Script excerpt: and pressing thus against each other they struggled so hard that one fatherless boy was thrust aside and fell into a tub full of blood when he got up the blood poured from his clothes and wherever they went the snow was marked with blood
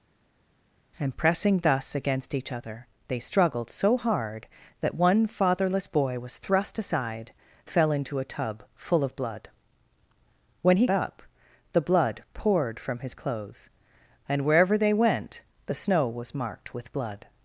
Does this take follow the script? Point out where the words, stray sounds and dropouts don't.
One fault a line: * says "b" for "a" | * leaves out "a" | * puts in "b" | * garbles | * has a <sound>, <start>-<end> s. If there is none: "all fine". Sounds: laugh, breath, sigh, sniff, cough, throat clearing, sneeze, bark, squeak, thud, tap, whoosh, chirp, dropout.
* leaves out "and"
* leaves out "got"